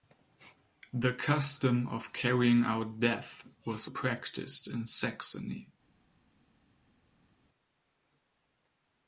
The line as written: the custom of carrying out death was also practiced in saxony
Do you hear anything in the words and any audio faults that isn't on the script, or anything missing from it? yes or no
yes